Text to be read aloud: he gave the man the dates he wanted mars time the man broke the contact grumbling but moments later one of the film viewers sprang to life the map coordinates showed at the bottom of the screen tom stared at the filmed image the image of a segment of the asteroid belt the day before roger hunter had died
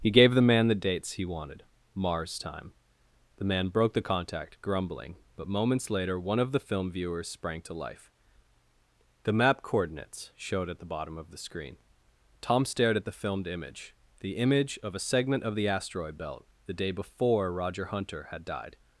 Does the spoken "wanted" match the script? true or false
true